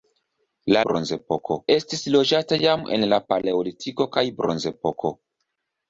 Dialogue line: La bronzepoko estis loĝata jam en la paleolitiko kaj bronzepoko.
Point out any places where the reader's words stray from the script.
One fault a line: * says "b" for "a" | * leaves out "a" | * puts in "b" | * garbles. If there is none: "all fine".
all fine